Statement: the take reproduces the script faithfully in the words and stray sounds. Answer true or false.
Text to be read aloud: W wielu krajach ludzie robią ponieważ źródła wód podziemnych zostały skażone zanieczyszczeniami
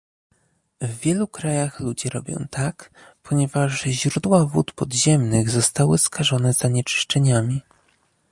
false